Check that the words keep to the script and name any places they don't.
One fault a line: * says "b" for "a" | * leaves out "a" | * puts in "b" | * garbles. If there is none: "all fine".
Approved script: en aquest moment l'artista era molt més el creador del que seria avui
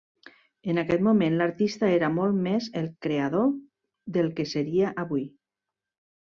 all fine